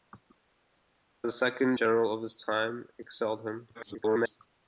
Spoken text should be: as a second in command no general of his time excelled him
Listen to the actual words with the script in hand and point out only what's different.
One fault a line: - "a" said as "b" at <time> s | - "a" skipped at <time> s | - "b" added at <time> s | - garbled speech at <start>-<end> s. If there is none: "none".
- "in command no" skipped at 1.8 s
- garbled speech at 3.7-4.4 s